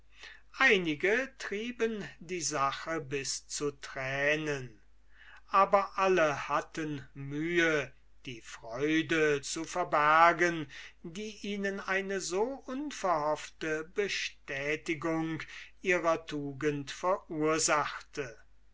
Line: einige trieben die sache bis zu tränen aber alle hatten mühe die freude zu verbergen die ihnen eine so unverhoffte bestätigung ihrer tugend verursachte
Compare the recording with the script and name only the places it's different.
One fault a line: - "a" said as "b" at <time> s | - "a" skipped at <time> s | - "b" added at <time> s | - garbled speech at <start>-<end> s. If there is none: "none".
none